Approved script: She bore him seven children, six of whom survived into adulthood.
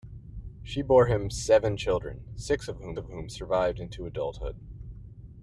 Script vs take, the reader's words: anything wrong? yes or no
yes